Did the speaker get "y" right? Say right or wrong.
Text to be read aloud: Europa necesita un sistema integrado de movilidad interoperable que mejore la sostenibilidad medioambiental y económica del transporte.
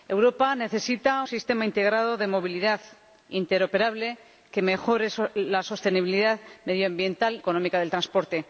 wrong